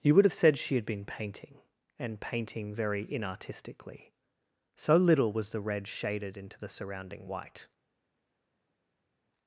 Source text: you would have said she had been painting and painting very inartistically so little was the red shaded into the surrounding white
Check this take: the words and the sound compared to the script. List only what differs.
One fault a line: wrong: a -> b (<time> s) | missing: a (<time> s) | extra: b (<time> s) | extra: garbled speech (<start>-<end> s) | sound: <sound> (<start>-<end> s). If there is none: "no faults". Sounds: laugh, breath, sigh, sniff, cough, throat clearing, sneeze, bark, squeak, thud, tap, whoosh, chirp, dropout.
no faults